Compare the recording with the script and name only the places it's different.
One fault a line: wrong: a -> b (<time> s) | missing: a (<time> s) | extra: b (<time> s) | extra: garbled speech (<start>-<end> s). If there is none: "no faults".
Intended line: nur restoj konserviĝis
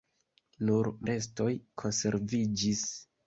no faults